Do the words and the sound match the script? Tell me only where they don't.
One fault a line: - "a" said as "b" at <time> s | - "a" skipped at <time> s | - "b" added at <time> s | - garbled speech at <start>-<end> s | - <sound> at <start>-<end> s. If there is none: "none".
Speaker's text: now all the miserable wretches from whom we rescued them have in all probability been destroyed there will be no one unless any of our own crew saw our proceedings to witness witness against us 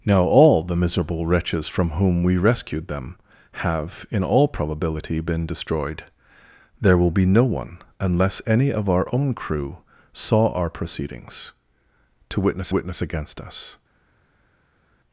none